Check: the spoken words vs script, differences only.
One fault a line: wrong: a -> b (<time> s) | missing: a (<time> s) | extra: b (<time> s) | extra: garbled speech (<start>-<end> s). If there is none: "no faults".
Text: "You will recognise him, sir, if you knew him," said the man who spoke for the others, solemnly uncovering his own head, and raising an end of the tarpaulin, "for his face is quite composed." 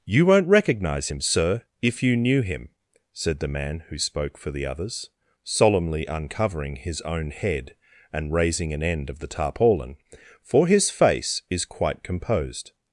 wrong: will -> won't (0.2 s)